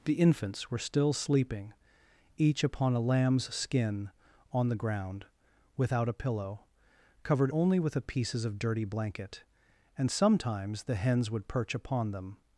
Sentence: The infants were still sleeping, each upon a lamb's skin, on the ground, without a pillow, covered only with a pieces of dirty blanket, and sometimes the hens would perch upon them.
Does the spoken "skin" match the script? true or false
true